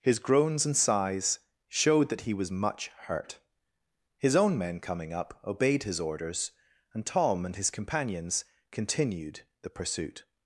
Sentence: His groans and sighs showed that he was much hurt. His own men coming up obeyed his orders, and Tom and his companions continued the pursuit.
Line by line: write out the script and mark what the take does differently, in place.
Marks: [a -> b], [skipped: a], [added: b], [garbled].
His groans and sighs showed that he was much hurt. His own men coming up obeyed his orders, and Tom and his companions continued the pursuit.